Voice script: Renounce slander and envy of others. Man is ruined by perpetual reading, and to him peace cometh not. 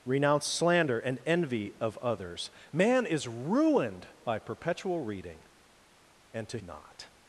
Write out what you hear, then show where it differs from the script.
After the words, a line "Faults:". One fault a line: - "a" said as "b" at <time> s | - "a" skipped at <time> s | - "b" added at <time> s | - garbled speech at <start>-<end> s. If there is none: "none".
Renounce slander and envy of others. Man is ruined by perpetual reading, and to not.
Faults:
- "him peace cometh" skipped at 6.6 s